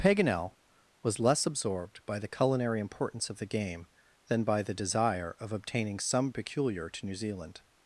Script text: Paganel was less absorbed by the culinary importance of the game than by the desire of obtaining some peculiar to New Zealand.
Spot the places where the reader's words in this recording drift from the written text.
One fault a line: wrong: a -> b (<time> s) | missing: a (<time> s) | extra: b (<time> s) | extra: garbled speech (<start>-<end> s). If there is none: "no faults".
no faults